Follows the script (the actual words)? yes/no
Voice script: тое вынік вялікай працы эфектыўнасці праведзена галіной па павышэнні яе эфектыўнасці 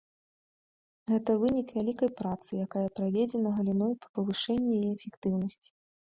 no